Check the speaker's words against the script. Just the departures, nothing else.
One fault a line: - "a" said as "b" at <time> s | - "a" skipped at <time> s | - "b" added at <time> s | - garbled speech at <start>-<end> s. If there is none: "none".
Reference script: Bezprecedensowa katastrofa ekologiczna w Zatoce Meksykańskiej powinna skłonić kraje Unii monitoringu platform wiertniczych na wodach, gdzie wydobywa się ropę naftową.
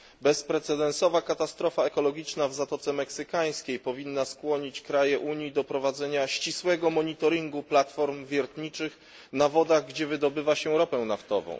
- "do prowadzenia ścisłego" added at 5.5 s